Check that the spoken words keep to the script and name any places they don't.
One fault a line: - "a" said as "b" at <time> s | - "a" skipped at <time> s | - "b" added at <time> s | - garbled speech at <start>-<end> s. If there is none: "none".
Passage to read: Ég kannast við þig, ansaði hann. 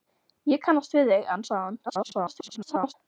- garbled speech at 1.9-2.9 s